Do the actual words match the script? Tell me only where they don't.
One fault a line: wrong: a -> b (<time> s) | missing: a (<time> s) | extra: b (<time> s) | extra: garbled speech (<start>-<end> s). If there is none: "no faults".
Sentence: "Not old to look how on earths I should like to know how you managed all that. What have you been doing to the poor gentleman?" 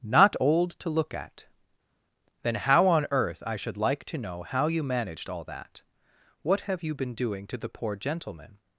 extra: at Then (1.1 s)
wrong: earths -> earth (3.1 s)